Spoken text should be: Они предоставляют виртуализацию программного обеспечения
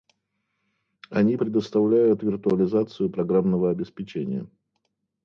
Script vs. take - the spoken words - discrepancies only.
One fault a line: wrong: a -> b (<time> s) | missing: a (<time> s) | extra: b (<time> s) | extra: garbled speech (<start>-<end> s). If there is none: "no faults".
no faults